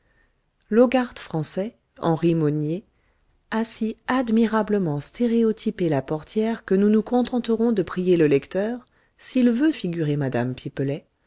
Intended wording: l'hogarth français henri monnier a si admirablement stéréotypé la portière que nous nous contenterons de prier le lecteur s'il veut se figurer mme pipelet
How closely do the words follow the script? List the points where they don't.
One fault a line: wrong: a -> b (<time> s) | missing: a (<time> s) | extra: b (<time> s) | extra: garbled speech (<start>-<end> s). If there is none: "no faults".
missing: se (9.7 s)